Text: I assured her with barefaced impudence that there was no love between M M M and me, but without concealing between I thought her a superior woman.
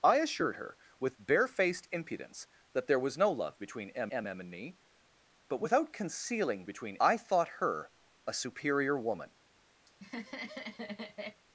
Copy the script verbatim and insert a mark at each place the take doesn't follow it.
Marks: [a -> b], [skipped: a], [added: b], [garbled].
I assured her with barefaced impudence that there was no love between M M M and me, but without concealing between I thought her a superior woman.